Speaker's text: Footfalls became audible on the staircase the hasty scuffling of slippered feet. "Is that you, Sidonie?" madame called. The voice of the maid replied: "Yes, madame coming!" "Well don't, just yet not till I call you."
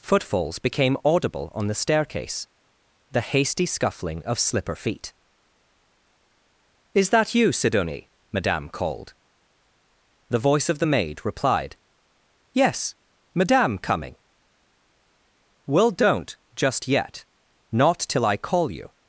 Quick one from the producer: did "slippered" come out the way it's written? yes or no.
no